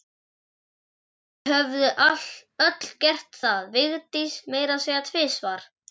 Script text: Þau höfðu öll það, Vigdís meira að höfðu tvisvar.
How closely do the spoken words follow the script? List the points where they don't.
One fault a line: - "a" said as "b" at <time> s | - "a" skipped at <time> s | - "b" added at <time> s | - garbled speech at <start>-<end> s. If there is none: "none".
- "gert" added at 3.0 s
- "höfðu" said as "segja" at 4.9 s